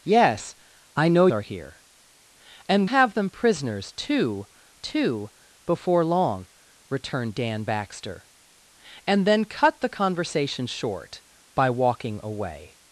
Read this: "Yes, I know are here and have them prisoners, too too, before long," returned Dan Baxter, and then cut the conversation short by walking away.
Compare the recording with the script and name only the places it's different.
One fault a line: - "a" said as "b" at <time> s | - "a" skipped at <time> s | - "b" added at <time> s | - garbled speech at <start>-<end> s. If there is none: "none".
none